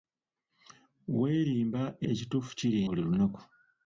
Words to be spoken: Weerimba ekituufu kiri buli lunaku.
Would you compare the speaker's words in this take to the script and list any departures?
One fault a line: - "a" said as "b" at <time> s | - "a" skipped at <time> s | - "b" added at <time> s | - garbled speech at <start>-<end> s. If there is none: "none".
none